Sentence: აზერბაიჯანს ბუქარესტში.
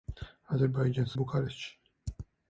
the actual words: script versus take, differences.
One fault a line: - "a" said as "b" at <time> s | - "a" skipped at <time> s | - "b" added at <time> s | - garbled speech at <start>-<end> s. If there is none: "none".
none